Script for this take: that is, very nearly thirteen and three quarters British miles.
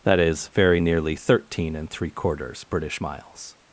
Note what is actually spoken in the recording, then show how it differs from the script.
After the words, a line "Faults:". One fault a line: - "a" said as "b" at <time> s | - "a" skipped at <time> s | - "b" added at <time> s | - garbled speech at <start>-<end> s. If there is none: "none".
that is, very nearly thirteen and three quarters British miles.
Faults:
none